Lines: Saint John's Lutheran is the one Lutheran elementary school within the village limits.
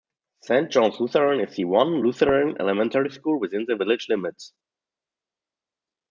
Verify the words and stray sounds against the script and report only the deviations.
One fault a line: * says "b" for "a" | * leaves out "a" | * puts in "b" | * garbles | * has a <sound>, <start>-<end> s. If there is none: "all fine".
all fine